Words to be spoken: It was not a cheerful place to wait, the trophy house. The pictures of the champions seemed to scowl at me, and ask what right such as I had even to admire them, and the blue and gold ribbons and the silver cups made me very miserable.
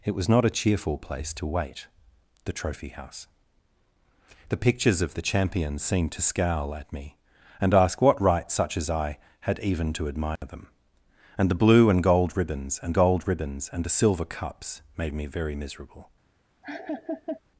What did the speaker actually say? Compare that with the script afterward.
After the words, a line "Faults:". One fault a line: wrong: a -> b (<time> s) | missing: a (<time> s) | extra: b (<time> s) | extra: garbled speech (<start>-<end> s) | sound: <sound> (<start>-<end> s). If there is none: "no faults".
It was not a cheerful place to wait, the trophy house. The pictures of the champions seemed to scowl at me, and ask what right such as I had even to admire them, and the blue and gold ribbons and gold ribbons and the silver cups made me very miserable.
Faults:
sound: dropout (10.4-10.4 s)
extra: gold ribbons and (12.9 s)
sound: laugh (16.6-17.4 s)